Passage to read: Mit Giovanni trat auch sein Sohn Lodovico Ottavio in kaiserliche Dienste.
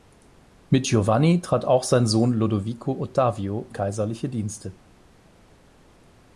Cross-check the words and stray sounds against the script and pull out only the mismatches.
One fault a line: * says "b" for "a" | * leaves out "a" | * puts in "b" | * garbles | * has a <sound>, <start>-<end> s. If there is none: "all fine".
* leaves out "in"